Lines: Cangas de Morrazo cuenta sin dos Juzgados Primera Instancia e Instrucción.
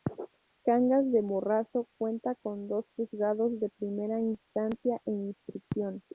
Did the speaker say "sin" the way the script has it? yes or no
no